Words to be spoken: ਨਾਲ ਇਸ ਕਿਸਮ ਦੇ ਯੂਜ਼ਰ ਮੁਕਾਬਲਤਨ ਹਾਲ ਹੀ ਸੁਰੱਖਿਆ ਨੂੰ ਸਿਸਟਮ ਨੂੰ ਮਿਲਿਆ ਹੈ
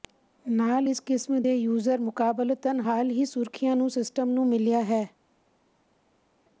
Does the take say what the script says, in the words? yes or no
yes